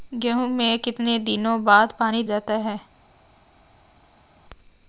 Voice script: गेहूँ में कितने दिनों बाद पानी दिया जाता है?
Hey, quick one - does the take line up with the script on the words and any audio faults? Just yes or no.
no